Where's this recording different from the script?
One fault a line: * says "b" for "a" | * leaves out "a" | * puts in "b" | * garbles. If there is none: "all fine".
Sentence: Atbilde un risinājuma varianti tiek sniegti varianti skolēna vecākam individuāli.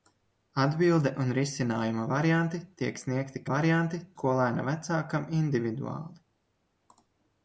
all fine